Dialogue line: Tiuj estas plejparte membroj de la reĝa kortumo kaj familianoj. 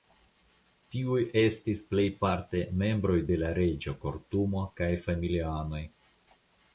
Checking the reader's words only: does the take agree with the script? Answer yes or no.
no